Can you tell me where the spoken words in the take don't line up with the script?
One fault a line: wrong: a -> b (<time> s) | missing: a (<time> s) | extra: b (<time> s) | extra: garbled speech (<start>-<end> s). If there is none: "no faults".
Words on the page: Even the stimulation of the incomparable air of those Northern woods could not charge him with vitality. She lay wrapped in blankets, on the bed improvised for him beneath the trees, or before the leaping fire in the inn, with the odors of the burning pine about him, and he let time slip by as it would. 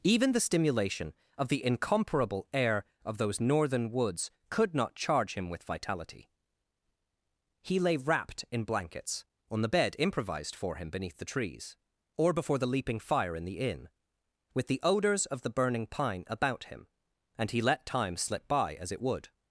wrong: She -> He (7.6 s)